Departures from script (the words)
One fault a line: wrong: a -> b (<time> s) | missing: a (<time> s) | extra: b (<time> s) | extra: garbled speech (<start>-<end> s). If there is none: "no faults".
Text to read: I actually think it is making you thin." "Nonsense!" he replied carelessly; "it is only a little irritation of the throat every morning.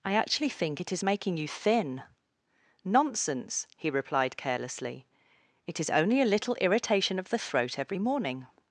no faults